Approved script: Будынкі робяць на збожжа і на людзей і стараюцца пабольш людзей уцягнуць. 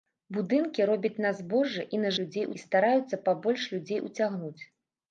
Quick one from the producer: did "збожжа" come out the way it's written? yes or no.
yes